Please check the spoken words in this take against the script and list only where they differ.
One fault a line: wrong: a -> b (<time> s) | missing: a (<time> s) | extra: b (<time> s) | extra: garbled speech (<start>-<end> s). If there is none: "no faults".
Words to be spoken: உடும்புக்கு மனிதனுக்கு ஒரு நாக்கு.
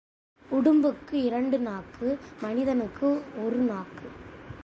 extra: இரண்டு நாக்கு (1.1 s)